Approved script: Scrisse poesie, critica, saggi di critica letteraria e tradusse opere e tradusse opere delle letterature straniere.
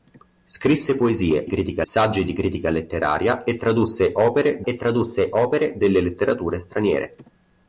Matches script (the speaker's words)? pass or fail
pass